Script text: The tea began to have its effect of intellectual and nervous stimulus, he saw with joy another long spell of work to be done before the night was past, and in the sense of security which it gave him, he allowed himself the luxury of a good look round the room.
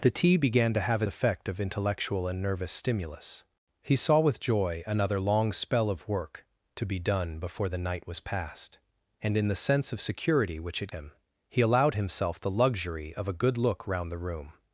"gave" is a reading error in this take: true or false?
true